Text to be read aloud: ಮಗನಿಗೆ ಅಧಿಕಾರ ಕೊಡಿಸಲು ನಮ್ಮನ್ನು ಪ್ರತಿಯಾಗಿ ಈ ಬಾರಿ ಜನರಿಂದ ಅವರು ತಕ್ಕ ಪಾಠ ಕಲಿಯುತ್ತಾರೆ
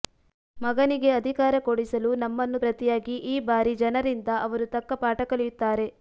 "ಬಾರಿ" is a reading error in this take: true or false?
false